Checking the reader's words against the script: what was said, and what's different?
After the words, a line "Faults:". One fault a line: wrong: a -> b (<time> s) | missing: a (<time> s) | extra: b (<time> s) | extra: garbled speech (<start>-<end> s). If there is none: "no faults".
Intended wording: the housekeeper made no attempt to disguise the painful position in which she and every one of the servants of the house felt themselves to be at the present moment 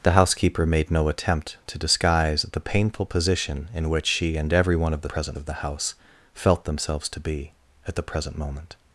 the housekeeper made no attempt to disguise the painful position in which she and every one of the present of the house felt themselves to be at the present moment
Faults:
wrong: servants -> present (5.0 s)